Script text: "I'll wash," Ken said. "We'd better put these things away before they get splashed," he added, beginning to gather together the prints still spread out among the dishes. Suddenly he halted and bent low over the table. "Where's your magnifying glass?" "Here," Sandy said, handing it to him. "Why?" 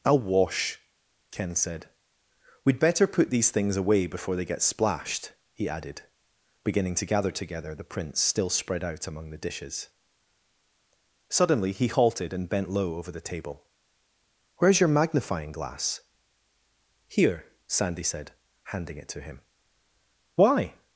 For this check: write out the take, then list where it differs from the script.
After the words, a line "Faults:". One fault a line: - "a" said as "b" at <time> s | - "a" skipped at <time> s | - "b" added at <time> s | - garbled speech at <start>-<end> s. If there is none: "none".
"I'll wash," Ken said. "We'd better put these things away before they get splashed," he added, beginning to gather together the prints still spread out among the dishes. Suddenly he halted and bent low over the table. "Where's your magnifying glass?" "Here," Sandy said, handing it to him. "Why?"
Faults:
none